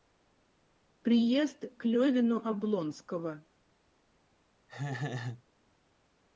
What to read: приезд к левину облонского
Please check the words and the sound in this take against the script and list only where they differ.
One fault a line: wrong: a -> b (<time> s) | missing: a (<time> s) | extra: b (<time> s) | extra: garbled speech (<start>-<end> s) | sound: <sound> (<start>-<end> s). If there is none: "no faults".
sound: laugh (4.7-5.4 s)